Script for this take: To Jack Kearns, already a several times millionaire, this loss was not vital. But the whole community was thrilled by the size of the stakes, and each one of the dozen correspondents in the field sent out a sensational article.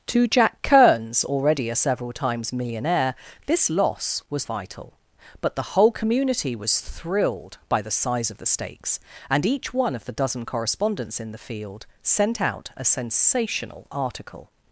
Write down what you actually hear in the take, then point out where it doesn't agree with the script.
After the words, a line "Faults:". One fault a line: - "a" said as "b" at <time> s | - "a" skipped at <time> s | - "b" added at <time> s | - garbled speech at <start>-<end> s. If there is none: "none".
To Jack Kearns, already a several times millionaire, this loss was vital. But the whole community was thrilled by the size of the stakes, and each one of the dozen correspondents in the field sent out a sensational article.
Faults:
- "not" skipped at 4.5 s